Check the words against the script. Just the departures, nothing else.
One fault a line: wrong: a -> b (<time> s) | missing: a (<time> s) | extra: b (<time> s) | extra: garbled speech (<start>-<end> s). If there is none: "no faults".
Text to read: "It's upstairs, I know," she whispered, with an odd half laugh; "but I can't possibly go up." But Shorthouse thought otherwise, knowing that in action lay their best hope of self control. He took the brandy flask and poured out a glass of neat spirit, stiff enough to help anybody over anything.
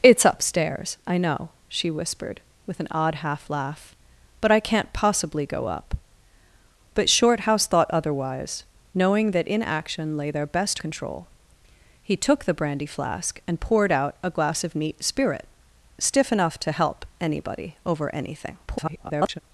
missing: hope of self (10.8 s)
extra: garbled speech (18.7-19.4 s)